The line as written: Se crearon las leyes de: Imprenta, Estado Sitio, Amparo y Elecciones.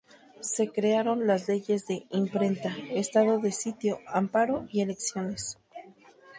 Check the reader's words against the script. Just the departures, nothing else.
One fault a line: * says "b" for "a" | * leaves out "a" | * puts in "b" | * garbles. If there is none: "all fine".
* puts in "de"